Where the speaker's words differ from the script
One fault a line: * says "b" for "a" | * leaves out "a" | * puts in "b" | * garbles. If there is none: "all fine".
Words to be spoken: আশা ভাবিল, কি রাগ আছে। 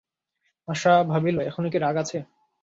* puts in "এখনো"